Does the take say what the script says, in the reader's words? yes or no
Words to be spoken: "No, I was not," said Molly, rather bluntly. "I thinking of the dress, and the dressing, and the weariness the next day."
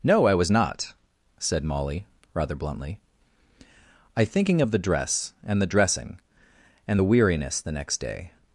yes